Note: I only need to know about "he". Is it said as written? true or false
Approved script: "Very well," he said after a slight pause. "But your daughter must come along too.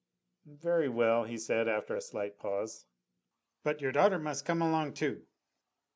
true